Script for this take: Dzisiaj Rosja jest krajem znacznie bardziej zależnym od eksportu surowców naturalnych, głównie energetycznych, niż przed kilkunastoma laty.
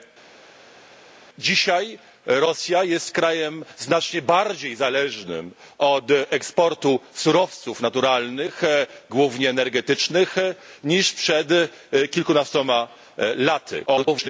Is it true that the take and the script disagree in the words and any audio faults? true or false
true